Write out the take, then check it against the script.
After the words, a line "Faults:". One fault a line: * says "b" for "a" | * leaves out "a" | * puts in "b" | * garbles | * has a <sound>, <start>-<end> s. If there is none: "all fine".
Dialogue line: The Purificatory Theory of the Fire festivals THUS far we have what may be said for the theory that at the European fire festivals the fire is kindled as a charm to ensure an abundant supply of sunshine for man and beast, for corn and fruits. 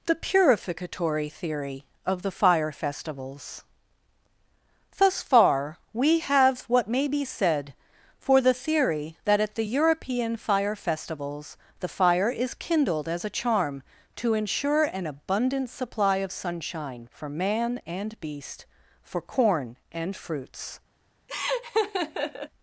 The Purificatory Theory of the Fire festivals THUS far we have what may be said for the theory that at the European fire festivals the fire is kindled as a charm to ensure an abundant supply of sunshine for man and beast, for corn and fruits.
Faults:
* has a laugh, 21.3-22.5 s